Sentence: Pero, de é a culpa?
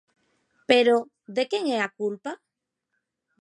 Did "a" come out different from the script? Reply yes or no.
no